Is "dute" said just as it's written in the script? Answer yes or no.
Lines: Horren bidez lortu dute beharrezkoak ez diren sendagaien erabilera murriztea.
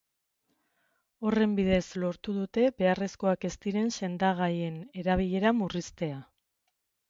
yes